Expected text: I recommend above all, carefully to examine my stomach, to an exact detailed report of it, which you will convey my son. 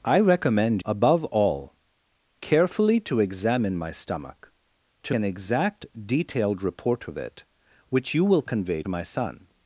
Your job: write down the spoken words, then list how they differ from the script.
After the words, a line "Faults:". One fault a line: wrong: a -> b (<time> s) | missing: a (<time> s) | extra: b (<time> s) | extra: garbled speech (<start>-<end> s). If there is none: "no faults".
I recommend above all, carefully to examine my stomach, to an exact detailed report of it, which you will convey my son.
Faults:
no faults